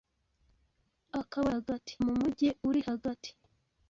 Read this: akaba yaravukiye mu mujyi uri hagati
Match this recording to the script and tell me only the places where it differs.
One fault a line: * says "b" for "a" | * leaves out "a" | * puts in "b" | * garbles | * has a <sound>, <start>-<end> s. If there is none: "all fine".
* says "hagati" for "yaravukiye"